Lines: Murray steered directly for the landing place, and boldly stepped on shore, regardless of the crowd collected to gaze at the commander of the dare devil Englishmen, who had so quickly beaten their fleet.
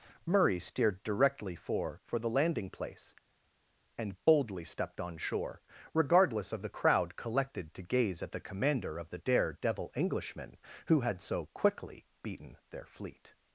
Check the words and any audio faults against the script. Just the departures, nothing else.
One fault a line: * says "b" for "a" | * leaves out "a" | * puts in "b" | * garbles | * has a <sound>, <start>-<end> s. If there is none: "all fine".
* puts in "for"